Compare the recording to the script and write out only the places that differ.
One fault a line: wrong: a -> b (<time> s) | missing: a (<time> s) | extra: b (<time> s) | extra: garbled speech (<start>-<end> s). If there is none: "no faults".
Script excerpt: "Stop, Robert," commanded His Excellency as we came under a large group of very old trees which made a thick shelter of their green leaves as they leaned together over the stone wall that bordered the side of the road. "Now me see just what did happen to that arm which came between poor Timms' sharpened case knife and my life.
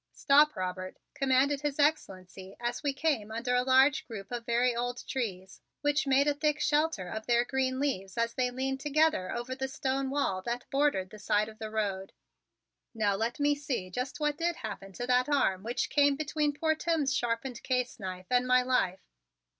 extra: let (13.2 s)